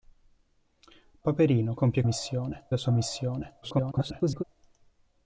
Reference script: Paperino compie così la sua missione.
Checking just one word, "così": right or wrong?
wrong